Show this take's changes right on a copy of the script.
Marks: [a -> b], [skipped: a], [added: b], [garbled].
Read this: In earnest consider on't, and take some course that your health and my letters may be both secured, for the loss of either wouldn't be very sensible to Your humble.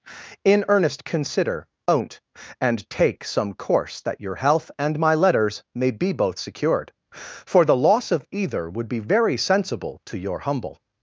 In earnest consider on't, and take some course that your health and my letters may be both secured, for the loss of either [wouldn't -> would] be very sensible to Your humble.